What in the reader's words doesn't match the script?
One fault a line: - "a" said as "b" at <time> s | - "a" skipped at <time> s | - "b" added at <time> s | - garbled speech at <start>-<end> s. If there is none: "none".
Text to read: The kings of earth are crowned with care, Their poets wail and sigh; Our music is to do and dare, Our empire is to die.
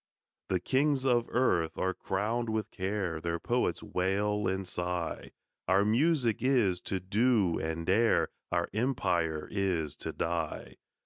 none